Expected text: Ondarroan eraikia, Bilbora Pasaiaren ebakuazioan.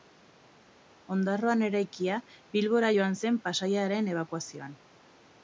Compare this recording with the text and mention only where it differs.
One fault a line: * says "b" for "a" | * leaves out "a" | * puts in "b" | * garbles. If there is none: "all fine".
* puts in "joan zen"